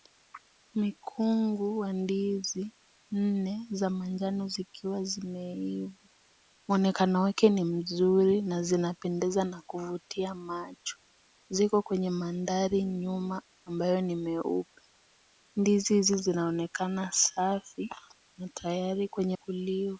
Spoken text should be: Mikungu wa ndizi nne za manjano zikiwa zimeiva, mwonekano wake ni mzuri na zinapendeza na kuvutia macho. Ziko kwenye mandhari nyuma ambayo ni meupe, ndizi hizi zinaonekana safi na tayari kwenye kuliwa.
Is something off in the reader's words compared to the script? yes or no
no